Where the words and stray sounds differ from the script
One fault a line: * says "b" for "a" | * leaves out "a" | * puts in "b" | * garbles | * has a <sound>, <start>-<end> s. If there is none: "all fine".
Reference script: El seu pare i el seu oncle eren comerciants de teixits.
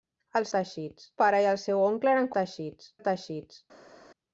* says "teixits" for "seu"
* says "teixits" for "comerciants"